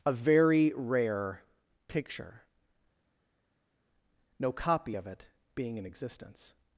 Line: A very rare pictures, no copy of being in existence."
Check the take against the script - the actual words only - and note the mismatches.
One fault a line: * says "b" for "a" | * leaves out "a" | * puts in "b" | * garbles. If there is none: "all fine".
* says "picture" for "pictures"
* puts in "it"